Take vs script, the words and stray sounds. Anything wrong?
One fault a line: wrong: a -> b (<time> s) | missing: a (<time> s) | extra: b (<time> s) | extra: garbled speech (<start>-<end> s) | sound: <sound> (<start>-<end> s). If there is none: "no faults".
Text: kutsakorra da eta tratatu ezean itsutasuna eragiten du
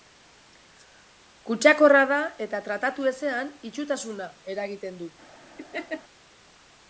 sound: laugh (5.6-6.0 s)